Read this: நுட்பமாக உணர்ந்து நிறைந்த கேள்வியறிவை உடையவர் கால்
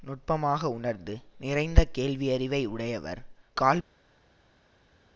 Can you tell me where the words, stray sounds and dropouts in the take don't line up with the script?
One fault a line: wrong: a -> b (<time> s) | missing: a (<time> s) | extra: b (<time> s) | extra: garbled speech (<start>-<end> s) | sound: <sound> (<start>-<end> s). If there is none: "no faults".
no faults